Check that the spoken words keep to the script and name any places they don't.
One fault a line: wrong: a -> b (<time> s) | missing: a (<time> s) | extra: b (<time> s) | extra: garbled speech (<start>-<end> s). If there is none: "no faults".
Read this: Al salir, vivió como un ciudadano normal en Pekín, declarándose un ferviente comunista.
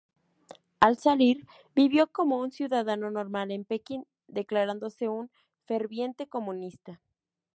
no faults